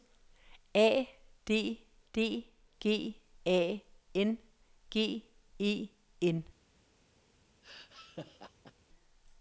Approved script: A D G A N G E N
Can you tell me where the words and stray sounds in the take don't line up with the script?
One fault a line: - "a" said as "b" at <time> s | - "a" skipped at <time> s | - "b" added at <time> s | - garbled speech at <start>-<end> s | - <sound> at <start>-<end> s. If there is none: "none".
- "D" added at 2.1 s
- laugh at 7.6-8.7 s